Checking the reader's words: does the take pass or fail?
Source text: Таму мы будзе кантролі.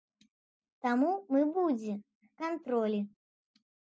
pass